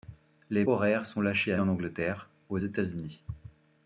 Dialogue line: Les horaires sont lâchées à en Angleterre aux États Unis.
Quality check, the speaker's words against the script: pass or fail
pass